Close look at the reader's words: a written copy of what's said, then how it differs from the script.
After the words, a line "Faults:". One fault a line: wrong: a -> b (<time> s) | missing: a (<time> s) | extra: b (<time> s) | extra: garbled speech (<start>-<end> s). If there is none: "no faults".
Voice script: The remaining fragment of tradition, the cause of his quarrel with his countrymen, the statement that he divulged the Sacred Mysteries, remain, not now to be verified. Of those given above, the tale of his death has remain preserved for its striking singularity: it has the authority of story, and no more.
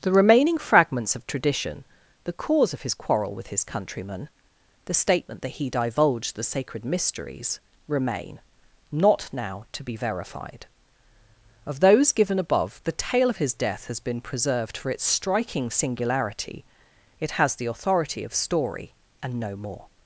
The remaining fragments of tradition, the cause of his quarrel with his countrymen, the statement that he divulged the Sacred Mysteries, remain, not now to be verified. Of those given above, the tale of his death has been preserved for its striking singularity: it has the authority of story, and no more.
Faults:
wrong: fragment -> fragments (0.6 s)
wrong: remain -> been (14.0 s)